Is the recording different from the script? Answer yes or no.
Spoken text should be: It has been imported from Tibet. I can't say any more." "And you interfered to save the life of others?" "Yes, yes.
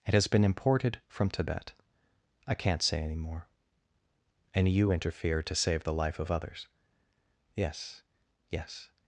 no